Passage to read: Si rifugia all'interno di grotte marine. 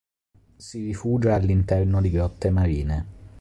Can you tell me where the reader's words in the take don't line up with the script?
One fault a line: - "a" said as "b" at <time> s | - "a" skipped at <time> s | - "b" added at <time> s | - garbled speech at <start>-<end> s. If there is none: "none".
none